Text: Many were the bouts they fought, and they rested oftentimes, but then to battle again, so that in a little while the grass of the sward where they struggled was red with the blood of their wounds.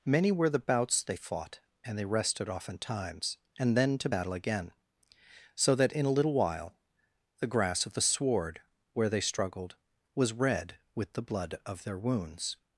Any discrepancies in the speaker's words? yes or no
yes